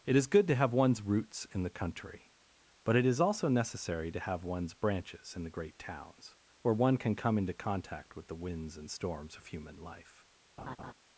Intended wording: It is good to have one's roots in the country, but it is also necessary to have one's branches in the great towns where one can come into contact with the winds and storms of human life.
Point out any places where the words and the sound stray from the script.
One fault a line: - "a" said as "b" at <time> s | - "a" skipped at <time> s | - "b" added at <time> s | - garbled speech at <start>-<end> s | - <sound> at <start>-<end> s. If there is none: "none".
- laugh at 10.6-10.9 s